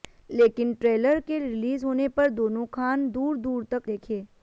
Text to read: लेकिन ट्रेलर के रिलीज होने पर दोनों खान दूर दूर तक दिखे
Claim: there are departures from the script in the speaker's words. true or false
false